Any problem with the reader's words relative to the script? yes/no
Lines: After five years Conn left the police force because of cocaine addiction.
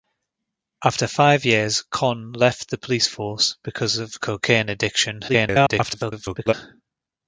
yes